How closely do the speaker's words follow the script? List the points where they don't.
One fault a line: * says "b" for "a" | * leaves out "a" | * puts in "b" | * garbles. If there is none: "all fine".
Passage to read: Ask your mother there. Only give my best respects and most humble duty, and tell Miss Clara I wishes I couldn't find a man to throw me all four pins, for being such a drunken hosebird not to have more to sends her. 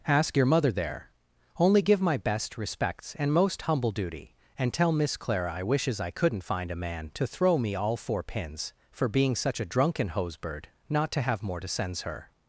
all fine